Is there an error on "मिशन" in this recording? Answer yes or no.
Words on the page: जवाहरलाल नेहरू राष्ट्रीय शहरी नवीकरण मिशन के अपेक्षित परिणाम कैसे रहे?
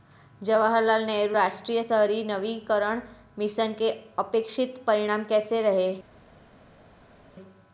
no